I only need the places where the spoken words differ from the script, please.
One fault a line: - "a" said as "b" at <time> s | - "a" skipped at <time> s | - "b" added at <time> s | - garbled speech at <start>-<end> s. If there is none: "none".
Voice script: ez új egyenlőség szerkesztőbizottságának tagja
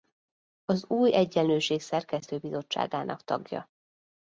- "ez" said as "az" at 0.6 s